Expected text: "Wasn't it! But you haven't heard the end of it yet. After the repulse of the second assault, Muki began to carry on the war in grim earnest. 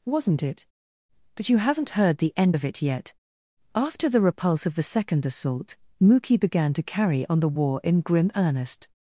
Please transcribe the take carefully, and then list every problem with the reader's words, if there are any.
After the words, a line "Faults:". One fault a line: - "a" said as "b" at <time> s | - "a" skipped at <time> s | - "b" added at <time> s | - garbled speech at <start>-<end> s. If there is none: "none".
"Wasn't it! But you haven't heard the end of it yet. After the repulse of the second assault, Muki began to carry on the war in grim earnest.
Faults:
none